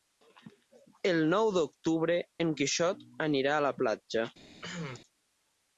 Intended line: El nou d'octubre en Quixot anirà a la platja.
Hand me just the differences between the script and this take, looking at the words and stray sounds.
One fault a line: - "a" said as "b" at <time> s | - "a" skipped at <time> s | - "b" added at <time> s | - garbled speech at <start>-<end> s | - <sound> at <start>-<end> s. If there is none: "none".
- cough at 4.6-5.0 s